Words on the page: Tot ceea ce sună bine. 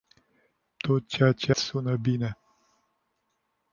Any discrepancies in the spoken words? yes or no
no